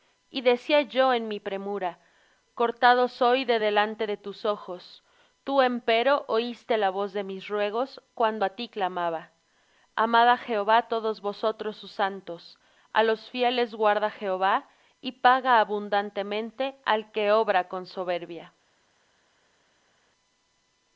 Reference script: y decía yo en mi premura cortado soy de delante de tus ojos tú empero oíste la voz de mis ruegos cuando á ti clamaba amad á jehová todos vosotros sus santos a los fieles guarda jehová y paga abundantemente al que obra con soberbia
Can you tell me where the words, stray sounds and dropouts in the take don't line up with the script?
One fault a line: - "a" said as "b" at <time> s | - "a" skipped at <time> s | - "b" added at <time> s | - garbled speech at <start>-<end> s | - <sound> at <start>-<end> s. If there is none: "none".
none